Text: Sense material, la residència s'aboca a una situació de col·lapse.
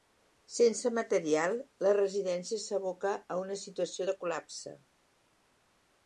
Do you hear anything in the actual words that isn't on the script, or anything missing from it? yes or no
no